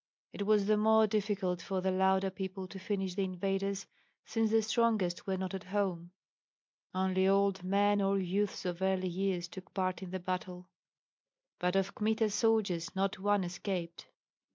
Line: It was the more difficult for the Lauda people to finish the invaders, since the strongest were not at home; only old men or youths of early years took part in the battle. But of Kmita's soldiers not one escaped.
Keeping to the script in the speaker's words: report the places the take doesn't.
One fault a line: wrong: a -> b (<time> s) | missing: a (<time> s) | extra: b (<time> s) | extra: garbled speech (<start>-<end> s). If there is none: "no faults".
no faults